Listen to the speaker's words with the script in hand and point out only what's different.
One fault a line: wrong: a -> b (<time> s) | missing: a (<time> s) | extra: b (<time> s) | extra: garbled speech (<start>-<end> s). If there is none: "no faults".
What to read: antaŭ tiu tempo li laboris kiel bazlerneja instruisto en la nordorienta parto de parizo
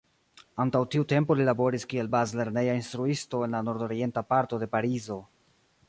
no faults